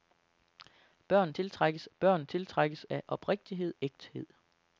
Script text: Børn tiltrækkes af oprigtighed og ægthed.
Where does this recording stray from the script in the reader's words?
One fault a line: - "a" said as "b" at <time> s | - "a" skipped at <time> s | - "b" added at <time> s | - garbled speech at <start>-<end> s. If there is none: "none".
- "børn tiltrækkes" added at 2.0 s
- "og" skipped at 3.7 s